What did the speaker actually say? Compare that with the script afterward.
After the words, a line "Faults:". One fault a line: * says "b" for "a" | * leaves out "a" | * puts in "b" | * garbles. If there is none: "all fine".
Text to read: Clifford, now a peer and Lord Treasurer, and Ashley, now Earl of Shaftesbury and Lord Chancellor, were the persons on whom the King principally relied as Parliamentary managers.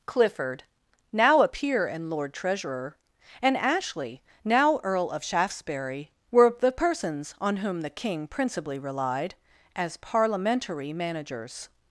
Clifford, now a peer and Lord Treasurer, and Ashley, now Earl of Shaftesbury were the persons on whom the King principally relied as Parliamentary managers.
Faults:
* leaves out "and Lord Chancellor"